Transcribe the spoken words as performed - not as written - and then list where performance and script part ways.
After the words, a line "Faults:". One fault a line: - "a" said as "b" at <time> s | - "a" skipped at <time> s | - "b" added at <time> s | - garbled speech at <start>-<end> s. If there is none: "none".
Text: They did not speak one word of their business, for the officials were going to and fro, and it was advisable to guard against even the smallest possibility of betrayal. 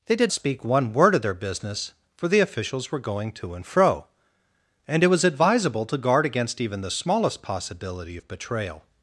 They did speak one word of their business, for the officials were going to and fro, and it was advisable to guard against even the smallest possibility of betrayal.
Faults:
- "not" skipped at 0.3 s